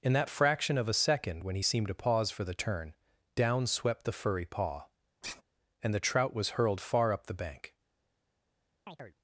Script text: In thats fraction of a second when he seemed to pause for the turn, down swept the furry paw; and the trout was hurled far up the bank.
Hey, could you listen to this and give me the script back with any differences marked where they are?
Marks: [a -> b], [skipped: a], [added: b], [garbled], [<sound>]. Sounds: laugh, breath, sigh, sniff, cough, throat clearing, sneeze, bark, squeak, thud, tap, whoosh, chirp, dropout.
In [thats -> that] fraction of a second when he seemed to pause for the turn, down swept the furry paw; [sigh] and the trout was hurled far up the bank. [chirp]